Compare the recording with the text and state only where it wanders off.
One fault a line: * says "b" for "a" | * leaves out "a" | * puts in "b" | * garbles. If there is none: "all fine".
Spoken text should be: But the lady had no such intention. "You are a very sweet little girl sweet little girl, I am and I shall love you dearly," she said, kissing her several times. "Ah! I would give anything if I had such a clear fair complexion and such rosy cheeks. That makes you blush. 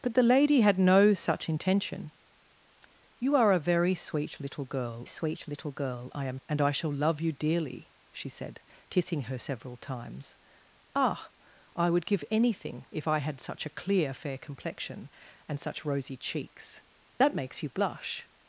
all fine